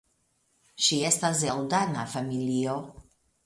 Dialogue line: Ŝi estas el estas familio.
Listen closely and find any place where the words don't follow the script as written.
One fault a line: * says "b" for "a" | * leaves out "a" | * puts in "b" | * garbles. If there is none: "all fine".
* says "dana" for "estas"